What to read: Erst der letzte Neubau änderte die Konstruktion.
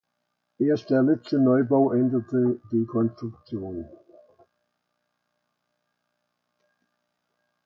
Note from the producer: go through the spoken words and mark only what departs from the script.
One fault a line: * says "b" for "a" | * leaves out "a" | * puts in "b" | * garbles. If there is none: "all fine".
all fine